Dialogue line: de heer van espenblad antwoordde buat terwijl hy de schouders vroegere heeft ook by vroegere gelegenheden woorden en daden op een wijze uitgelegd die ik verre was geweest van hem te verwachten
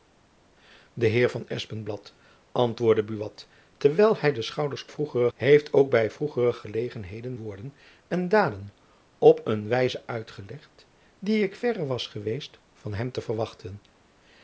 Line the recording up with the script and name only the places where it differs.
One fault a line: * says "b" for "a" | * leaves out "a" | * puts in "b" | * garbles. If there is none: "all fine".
all fine